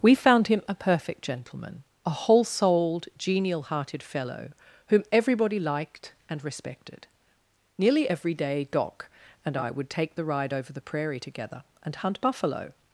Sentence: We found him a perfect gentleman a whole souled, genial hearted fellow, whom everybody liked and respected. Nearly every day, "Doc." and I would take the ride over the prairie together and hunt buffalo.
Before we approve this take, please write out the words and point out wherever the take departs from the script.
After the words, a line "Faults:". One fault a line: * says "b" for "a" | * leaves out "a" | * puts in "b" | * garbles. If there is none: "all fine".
We found him a perfect gentleman a whole souled, genial hearted fellow, whom everybody liked and respected. Nearly every day, "Doc." and I would take the ride over the prairie together and hunt buffalo.
Faults:
all fine